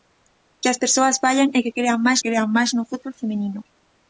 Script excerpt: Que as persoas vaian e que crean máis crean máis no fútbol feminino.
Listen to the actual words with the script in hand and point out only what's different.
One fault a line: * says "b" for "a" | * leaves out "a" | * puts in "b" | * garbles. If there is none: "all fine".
all fine